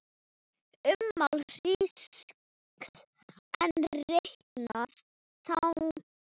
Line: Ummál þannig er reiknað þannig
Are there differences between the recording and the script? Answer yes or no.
yes